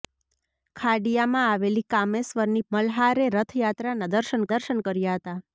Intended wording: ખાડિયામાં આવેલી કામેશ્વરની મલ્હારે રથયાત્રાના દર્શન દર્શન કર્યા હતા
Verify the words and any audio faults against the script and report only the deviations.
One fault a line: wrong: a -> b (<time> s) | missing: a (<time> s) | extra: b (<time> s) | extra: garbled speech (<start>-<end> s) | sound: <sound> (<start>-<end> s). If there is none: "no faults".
no faults